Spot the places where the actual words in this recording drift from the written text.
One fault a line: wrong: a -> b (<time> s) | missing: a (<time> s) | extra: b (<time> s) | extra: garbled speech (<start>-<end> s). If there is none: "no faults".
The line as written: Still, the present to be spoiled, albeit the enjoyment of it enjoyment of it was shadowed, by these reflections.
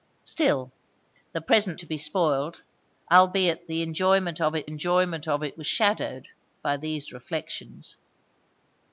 no faults